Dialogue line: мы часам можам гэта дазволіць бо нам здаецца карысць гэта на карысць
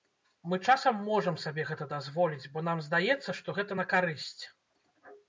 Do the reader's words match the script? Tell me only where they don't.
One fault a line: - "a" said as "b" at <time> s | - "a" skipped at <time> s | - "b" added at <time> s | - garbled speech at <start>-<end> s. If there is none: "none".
- "сабе" added at 1.4 s
- "карысць" said as "што" at 3.4 s